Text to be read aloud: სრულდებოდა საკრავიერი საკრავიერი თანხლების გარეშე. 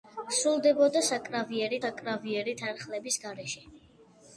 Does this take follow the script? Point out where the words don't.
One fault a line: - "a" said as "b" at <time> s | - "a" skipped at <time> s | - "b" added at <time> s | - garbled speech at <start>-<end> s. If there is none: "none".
none